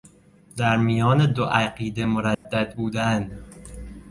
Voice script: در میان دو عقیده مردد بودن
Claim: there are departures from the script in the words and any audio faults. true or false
true